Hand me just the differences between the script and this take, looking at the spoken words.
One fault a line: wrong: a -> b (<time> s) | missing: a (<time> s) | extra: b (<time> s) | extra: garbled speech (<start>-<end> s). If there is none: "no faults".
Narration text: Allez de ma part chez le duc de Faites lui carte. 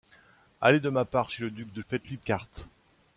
no faults